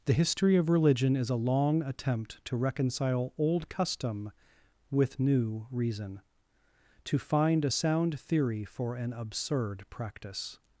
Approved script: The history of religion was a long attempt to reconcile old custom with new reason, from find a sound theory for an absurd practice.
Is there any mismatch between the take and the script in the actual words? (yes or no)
yes